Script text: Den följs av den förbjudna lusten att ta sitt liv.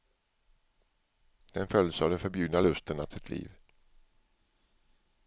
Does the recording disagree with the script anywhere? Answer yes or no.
yes